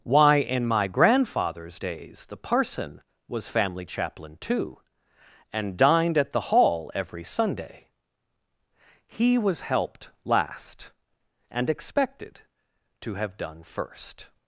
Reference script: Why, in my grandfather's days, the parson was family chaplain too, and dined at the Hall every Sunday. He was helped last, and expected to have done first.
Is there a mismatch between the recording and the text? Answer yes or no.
no